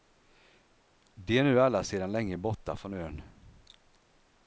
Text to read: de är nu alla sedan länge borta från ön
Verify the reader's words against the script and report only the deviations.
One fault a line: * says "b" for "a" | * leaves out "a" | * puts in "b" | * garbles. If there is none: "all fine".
all fine